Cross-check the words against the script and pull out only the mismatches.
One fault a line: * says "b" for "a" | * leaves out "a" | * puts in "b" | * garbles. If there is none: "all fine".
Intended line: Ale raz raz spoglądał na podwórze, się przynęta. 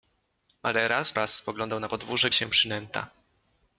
all fine